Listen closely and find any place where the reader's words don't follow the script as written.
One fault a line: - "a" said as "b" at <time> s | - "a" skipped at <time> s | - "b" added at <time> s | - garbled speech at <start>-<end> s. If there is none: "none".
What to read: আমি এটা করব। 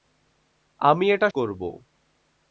none